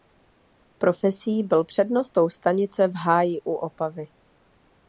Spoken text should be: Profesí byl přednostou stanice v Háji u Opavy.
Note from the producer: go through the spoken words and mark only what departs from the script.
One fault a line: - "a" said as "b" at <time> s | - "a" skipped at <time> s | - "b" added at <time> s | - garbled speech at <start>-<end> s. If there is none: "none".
none